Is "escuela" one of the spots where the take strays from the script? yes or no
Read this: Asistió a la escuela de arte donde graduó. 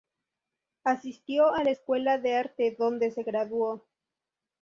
no